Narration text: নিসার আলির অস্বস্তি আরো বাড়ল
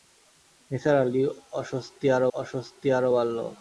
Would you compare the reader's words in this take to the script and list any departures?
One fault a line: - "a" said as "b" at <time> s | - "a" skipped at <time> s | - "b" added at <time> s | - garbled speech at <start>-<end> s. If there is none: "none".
- "অস্বস্তি আরো" added at 2.3 s